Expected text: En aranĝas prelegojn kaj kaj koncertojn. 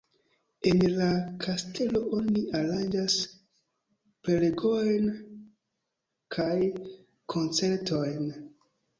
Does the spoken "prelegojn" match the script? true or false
true